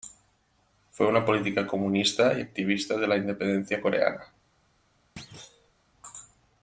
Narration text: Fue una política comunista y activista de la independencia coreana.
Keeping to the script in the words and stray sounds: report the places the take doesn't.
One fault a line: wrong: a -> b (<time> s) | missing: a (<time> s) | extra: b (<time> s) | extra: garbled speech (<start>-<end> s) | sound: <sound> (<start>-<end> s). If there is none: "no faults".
sound: thud (5.2-5.7 s)